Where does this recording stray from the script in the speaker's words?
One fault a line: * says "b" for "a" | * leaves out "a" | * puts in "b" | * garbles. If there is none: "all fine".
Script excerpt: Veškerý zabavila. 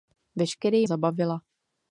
all fine